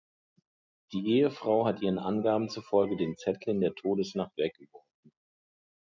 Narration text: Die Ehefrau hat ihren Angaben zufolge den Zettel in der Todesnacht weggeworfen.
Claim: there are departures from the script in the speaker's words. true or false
false